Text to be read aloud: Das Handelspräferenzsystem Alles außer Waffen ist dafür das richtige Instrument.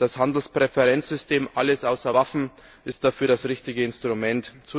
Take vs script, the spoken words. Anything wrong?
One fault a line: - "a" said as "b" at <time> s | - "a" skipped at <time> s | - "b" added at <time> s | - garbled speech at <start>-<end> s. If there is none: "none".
none